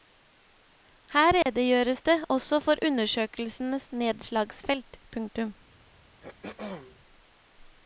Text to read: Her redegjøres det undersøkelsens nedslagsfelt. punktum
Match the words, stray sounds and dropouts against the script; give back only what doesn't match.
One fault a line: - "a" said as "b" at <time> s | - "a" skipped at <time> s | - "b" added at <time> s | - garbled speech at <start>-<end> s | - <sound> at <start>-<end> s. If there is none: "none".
- dropout at 1.4-1.5 s
- "også for" added at 2.3 s
- throat clearing at 6.2-7.0 s